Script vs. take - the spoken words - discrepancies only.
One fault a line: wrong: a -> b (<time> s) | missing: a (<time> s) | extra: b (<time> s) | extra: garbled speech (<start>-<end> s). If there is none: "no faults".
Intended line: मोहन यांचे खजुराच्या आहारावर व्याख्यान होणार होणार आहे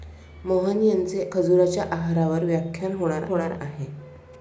no faults